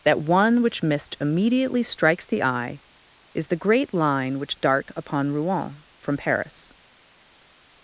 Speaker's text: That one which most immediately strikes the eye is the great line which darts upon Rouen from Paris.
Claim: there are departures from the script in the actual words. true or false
true